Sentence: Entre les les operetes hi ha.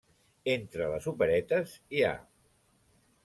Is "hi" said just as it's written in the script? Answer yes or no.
yes